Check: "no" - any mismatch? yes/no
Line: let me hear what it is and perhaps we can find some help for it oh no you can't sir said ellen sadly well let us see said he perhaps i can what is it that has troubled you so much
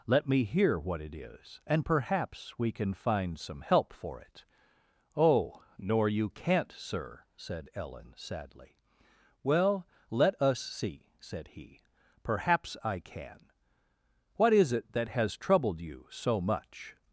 yes